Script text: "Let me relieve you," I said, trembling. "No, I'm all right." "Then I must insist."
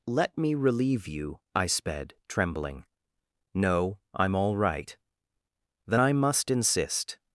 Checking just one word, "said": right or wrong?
wrong